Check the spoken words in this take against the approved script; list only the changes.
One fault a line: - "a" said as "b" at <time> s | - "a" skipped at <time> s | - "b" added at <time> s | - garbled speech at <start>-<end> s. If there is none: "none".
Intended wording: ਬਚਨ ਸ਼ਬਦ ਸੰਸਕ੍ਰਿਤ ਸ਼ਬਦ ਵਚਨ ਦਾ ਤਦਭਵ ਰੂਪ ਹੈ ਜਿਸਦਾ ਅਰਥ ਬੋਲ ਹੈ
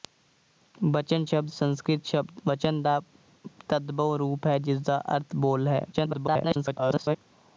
- garbled speech at 5.9-7.2 s